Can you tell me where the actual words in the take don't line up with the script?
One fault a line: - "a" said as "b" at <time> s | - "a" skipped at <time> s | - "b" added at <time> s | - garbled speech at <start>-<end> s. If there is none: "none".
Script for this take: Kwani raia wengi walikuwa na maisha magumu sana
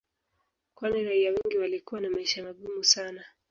none